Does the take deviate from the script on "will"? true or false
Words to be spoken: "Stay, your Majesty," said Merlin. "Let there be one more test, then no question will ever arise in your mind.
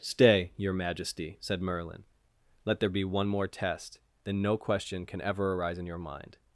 true